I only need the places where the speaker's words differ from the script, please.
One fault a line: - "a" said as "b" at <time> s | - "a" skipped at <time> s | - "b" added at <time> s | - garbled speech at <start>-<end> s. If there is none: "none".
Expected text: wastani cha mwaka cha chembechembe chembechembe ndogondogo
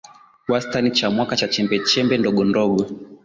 - "chembechembe" skipped at 2.2 s